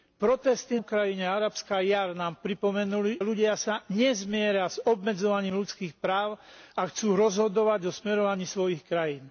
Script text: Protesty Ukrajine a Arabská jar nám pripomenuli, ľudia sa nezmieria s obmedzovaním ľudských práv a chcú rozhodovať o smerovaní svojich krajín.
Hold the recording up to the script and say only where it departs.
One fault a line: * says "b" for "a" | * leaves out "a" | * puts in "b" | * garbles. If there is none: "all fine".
all fine